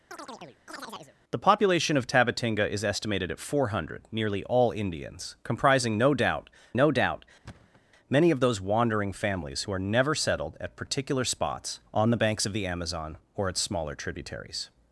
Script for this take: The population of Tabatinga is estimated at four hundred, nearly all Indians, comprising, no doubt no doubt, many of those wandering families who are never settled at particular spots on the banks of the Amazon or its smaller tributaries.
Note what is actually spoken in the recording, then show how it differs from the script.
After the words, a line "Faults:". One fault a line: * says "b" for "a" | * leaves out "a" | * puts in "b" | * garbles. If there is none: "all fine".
The population of Tabatinga is estimated at four hundred, nearly all Indians, comprising, no doubt no doubt, many of those wandering families who are never settled at particular spots on the banks of the Amazon or its smaller tributaries.
Faults:
all fine